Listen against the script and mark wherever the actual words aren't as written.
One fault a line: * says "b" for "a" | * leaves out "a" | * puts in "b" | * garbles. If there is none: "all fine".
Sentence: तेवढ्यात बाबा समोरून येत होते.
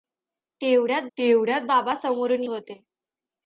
* puts in "तेवढ्यात"
* leaves out "येत"